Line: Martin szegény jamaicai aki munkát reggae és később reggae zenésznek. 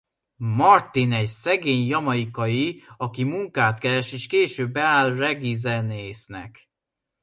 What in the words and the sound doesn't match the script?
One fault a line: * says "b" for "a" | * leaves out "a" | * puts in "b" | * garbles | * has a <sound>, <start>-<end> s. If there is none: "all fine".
* puts in "egy"
* says "keres" for "reggae"
* puts in "beáll"